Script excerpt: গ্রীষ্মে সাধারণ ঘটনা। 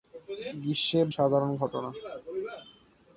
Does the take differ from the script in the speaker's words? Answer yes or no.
no